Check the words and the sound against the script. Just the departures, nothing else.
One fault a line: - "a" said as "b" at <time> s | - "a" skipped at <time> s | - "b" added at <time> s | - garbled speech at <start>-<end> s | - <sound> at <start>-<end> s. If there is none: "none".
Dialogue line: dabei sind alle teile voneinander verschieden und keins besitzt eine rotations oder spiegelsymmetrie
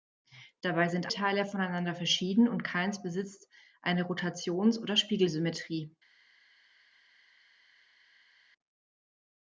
- "alle" skipped at 1.1 s